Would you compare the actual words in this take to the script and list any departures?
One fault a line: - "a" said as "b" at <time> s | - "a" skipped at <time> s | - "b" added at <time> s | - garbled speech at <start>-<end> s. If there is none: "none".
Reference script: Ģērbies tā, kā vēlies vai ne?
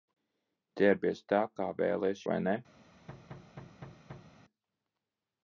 none